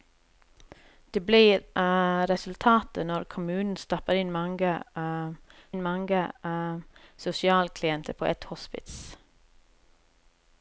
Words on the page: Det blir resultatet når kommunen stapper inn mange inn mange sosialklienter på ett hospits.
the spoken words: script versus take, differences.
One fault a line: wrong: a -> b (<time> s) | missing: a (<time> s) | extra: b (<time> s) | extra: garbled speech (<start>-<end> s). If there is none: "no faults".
no faults